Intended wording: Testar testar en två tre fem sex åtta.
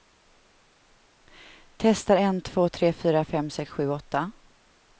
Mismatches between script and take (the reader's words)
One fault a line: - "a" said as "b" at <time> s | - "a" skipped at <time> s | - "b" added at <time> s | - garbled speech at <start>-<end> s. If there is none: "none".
- "testar" skipped at 2.2 s
- "fyra" added at 2.9 s
- "sju" added at 3.7 s